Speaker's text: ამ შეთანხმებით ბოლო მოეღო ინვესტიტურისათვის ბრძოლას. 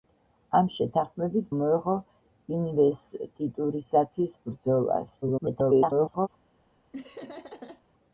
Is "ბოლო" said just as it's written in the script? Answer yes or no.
no